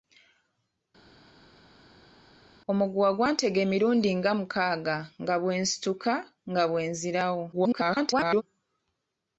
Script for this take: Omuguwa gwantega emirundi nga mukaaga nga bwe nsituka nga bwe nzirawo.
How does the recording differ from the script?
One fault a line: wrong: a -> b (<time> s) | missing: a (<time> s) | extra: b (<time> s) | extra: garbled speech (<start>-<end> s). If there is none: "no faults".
extra: garbled speech (7.5-8.4 s)